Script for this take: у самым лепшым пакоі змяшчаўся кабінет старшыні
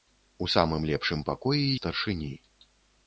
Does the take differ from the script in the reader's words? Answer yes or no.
yes